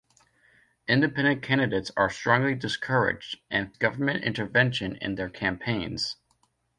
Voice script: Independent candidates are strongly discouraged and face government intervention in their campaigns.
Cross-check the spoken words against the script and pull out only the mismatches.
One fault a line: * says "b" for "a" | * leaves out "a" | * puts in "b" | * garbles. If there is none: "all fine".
* leaves out "face"